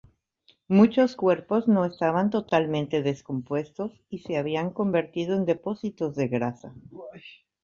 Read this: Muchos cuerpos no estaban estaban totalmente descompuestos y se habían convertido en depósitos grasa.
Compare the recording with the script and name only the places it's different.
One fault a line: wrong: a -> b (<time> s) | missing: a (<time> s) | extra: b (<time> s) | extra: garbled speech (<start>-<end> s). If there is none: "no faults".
missing: estaban (2.3 s)
extra: de (6.1 s)